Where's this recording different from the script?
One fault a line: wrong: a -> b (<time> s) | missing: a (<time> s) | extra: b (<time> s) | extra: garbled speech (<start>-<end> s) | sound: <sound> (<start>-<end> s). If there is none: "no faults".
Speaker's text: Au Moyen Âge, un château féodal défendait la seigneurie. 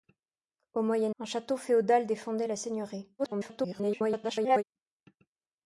missing: Âge (1.1 s)
extra: garbled speech (3.2-4.6 s)